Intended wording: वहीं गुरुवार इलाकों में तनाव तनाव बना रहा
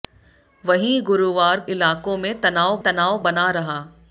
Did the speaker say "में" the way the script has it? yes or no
yes